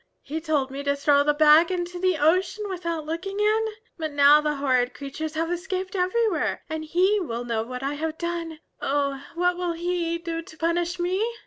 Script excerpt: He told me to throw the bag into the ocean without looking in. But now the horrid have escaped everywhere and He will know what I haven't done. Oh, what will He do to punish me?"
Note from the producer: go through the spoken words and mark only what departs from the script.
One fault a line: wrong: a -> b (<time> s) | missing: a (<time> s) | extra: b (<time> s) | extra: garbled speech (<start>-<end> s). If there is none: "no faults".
extra: creatures (5.0 s)
wrong: haven't -> have (7.9 s)